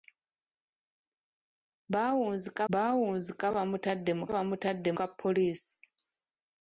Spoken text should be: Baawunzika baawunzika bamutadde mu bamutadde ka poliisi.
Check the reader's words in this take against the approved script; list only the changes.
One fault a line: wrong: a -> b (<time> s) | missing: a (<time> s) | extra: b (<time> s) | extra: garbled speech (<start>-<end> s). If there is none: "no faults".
no faults